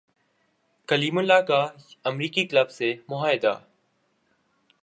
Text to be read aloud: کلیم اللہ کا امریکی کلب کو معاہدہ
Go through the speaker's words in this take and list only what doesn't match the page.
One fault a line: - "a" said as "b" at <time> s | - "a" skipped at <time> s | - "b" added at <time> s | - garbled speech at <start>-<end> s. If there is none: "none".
- "کو" said as "سے" at 2.7 s